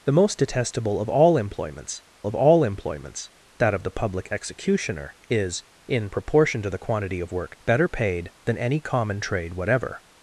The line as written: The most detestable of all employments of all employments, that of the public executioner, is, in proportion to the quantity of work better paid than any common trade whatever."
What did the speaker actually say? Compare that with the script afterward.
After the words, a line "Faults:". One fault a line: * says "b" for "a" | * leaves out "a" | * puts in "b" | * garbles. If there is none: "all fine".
The most detestable of all employments of all employments, that of the public executioner, is, in proportion to the quantity of work better paid than any common trade whatever."
Faults:
all fine